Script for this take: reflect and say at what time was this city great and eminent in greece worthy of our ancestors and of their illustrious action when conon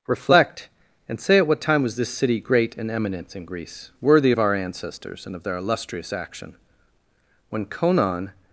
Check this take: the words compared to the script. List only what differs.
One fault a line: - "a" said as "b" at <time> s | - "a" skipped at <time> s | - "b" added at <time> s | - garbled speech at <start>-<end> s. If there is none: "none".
none